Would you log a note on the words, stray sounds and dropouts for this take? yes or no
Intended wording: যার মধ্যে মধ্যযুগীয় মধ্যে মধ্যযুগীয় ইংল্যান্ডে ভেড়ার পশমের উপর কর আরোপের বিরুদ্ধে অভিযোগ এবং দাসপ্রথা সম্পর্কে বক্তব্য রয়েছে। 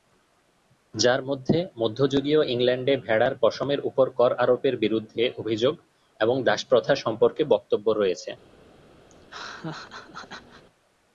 yes